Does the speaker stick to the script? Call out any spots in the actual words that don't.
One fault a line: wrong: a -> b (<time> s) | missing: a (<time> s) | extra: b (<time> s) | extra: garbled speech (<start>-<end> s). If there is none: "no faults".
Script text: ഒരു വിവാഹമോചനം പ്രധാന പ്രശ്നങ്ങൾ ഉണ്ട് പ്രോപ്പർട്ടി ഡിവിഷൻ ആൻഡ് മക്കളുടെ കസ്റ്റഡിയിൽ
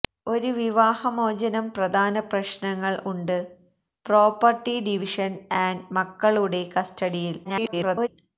extra: garbled speech (7.4-8.1 s)